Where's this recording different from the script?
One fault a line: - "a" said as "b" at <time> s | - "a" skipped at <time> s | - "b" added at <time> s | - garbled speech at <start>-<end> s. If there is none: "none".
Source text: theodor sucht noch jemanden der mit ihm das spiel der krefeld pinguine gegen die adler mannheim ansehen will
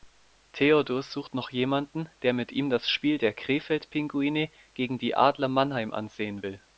none